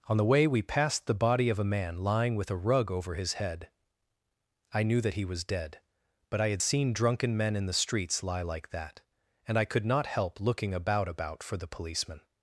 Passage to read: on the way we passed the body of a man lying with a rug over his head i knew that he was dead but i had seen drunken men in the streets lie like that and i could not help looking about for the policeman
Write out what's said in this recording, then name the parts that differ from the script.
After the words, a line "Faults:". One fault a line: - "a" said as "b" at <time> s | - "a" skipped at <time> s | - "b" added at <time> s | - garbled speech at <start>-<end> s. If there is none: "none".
on the way we passed the body of a man lying with a rug over his head i knew that he was dead but i had seen drunken men in the streets lie like that and i could not help looking about about for the policeman
Faults:
- "about" added at 11.1 s